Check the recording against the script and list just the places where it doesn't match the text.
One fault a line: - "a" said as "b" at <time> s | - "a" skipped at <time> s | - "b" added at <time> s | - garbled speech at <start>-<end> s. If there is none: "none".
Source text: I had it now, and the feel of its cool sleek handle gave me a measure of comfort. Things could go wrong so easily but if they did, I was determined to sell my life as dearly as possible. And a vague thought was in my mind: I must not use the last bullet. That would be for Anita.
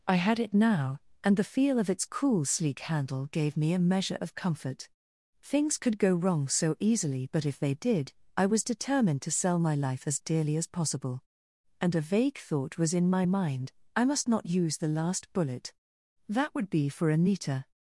none